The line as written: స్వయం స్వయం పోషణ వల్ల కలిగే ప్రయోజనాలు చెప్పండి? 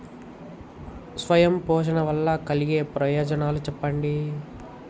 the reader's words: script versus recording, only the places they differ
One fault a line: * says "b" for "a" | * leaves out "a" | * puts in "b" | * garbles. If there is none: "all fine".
* leaves out "స్వయం"